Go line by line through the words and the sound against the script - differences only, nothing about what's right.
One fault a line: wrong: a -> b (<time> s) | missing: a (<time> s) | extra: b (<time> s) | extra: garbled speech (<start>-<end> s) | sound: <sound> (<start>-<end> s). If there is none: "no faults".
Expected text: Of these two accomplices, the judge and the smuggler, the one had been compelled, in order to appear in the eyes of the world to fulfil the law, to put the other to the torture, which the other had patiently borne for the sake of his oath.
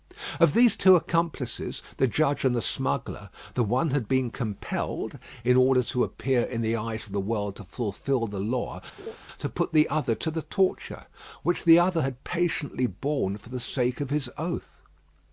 sound: laugh (9.0-9.2 s)